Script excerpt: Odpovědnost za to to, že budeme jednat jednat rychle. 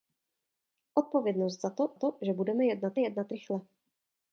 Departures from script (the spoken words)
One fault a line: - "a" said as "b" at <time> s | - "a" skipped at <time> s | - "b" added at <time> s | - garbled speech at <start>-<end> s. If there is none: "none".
none